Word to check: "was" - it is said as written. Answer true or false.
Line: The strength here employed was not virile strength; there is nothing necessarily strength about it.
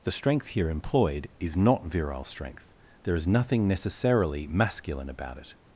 false